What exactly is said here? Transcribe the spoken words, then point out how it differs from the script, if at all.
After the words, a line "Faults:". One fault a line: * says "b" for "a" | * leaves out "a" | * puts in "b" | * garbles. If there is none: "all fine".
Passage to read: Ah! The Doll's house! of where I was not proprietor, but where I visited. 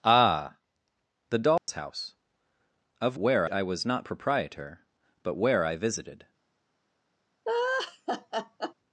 Ah! The Doll's house! of where I was not proprietor, but where I visited.
Faults:
all fine